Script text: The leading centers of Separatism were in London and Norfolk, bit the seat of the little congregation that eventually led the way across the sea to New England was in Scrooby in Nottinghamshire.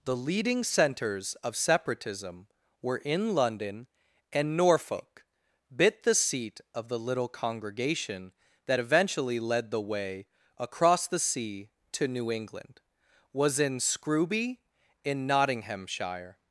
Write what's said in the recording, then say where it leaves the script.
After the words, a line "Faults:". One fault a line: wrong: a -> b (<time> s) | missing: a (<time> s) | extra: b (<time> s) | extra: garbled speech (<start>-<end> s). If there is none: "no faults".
The leading centers of Separatism were in London and Norfolk, bit the seat of the little congregation that eventually led the way across the sea to New England was in Scrooby in Nottinghamshire.
Faults:
no faults